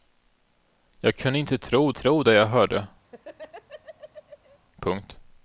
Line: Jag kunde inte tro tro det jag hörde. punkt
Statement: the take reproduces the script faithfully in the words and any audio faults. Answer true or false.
false